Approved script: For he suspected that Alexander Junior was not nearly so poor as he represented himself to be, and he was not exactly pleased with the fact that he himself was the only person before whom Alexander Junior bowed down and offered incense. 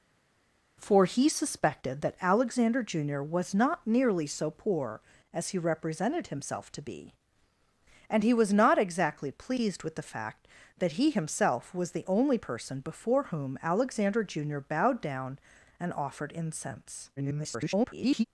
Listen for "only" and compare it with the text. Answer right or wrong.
right